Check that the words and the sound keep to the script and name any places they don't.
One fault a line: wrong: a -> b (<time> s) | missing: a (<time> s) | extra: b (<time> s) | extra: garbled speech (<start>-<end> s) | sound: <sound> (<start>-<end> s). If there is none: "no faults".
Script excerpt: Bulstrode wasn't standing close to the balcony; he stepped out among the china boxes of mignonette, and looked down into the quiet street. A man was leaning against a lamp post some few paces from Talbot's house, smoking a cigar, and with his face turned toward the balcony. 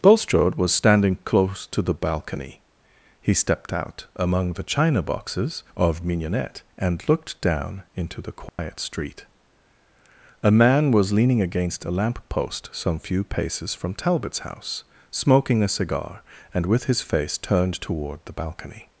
wrong: wasn't -> was (0.6 s)
sound: dropout (8.5-8.6 s)